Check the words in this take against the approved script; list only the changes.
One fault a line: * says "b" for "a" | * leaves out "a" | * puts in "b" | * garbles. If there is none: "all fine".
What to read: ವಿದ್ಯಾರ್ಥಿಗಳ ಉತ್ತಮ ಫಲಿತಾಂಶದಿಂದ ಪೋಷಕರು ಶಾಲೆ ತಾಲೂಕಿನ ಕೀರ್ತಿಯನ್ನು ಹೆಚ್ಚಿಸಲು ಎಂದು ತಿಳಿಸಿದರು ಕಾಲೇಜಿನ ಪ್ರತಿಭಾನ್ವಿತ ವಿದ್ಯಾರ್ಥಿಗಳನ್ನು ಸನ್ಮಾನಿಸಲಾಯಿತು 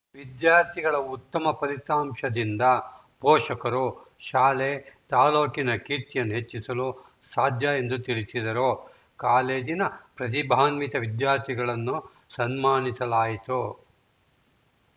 * puts in "ಸಾಧ್ಯ"